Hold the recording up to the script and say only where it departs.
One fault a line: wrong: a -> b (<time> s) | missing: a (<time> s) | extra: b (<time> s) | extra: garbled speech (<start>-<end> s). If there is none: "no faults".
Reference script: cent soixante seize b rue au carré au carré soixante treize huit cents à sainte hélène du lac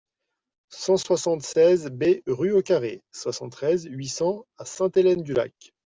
missing: au carré (3.0 s)